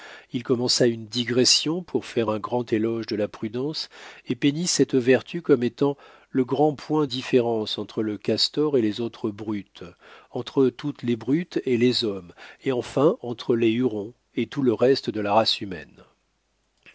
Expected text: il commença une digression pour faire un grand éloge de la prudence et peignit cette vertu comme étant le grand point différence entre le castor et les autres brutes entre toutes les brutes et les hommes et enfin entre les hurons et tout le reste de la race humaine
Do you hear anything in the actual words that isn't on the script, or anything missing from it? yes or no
no